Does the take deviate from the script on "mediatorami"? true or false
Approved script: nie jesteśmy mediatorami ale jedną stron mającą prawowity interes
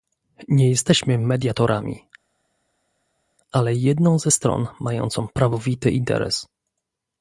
false